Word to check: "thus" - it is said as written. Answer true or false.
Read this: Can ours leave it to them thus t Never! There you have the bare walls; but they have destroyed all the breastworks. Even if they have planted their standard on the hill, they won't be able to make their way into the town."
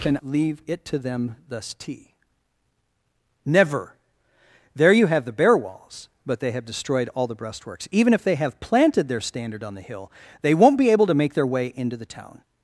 true